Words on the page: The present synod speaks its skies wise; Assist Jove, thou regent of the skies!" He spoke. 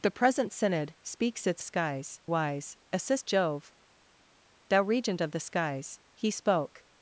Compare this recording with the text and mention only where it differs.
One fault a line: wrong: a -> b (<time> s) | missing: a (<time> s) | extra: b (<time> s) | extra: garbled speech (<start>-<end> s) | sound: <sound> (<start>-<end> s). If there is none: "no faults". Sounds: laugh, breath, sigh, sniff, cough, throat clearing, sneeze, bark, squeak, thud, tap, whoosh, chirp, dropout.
no faults